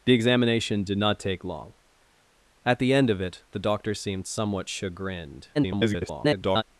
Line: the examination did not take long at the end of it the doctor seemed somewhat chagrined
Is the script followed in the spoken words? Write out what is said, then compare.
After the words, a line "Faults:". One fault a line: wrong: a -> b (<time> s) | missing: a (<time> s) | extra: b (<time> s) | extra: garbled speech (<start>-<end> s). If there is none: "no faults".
the examination did not take long at the end of it the doctor seemed somewhat chagrined [garbled]
Faults:
extra: garbled speech (5.5-6.6 s)